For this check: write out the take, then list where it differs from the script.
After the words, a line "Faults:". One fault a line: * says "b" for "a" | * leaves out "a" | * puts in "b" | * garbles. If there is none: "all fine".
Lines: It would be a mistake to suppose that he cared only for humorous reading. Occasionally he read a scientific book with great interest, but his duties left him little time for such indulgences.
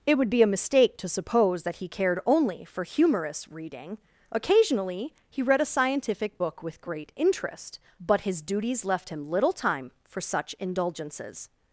It would be a mistake to suppose that he cared only for humorous reading. Occasionally he read a scientific book with great interest, but his duties left him little time for such indulgences.
Faults:
all fine